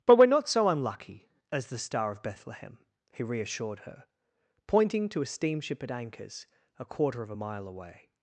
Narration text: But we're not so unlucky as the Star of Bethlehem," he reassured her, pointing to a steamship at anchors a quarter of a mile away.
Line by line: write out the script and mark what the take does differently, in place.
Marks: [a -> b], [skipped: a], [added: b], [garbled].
But we're not so unlucky as the Star of Bethlehem," he reassured her, pointing to a steamship at anchors a quarter of a mile away.